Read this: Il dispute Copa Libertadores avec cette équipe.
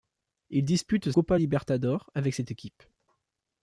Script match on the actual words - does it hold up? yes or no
yes